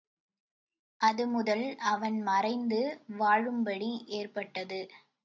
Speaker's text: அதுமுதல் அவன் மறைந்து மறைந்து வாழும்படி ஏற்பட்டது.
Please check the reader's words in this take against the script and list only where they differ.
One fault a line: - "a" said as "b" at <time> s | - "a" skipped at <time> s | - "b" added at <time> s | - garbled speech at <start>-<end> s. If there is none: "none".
- "மறைந்து" skipped at 2.8 s